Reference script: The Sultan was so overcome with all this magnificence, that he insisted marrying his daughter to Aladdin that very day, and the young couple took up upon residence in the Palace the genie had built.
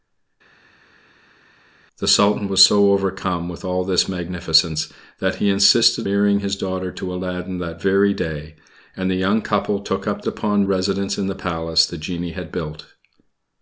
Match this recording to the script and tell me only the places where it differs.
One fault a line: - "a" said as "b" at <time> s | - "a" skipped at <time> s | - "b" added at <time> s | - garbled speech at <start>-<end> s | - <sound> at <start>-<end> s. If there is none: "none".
none